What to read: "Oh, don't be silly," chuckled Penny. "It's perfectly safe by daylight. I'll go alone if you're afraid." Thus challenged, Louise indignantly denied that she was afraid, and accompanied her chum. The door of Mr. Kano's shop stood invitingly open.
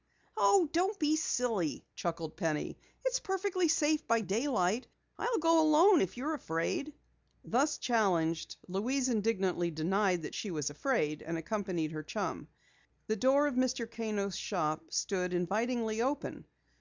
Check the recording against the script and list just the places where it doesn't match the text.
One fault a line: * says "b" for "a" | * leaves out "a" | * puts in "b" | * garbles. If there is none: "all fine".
all fine